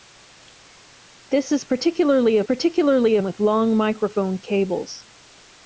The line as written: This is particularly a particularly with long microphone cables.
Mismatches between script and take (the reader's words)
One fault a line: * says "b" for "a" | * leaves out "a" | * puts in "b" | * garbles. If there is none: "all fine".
all fine